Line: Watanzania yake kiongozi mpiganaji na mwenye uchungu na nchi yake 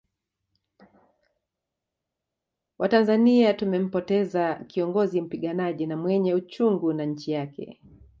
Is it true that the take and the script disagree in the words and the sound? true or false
true